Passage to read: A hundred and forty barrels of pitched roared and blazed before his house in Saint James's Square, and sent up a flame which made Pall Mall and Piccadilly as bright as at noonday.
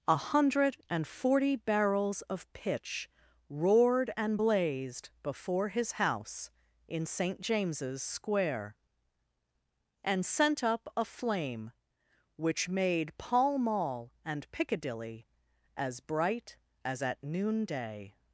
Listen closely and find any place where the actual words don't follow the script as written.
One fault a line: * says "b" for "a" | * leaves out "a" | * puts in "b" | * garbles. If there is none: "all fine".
* says "pitch" for "pitched"